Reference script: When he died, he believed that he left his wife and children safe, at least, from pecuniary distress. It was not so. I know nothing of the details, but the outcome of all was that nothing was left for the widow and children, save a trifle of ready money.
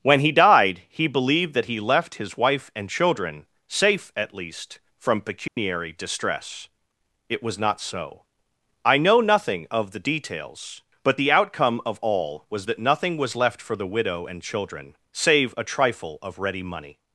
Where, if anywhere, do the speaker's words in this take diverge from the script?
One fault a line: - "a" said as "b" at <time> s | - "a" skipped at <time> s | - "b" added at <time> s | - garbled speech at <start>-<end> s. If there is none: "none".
none